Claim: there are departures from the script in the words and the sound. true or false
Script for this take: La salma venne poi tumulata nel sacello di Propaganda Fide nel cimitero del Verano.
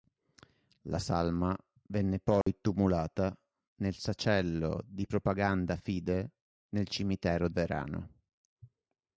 true